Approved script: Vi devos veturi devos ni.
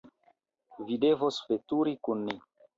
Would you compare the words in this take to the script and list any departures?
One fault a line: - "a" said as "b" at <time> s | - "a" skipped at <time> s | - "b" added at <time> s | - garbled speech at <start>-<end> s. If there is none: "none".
- "devos" said as "kun" at 2.1 s